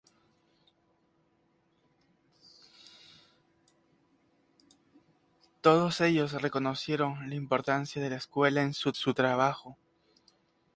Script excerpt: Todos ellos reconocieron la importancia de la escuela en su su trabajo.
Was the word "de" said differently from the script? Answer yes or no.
no